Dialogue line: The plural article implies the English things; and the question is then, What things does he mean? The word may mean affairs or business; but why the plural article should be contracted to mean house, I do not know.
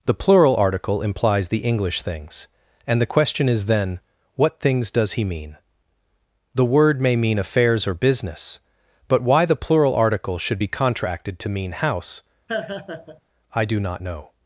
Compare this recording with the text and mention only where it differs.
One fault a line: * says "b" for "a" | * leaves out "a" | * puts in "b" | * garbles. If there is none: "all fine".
all fine